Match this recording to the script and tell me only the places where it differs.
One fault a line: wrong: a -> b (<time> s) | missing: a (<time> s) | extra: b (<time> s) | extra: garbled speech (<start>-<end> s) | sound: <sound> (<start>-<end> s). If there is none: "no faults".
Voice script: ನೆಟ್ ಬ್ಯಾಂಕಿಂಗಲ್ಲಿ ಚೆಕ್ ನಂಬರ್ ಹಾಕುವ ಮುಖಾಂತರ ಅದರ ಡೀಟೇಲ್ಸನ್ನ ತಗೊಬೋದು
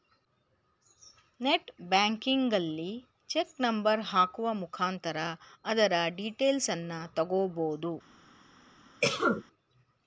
sound: cough (9.0-9.4 s)